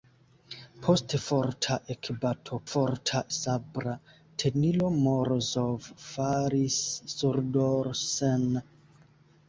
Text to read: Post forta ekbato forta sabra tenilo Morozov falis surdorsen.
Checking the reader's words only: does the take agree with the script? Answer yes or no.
yes